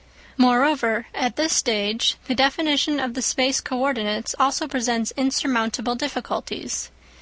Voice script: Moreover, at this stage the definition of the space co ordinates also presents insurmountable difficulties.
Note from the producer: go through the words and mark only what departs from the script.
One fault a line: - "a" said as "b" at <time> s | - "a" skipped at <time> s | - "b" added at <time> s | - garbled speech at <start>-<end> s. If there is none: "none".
none